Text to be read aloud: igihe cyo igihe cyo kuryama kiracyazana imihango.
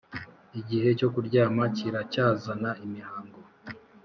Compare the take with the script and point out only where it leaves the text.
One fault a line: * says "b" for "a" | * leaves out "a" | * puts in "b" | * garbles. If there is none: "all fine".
* leaves out "igihe cyo"